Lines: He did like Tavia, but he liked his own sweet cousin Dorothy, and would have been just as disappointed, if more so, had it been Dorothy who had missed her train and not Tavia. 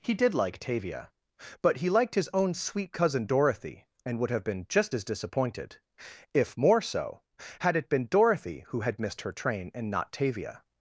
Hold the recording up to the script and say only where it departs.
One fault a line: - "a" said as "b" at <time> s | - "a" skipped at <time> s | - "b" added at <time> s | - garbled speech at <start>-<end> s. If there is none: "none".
none